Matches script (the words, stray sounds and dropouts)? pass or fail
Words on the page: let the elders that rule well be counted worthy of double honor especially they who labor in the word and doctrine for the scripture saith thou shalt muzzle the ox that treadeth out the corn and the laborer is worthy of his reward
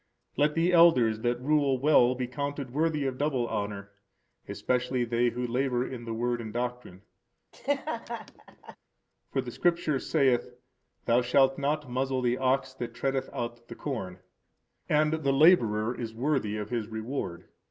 fail